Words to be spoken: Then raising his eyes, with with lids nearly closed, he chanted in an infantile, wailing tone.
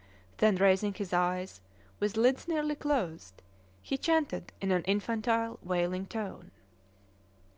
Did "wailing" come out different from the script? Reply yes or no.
no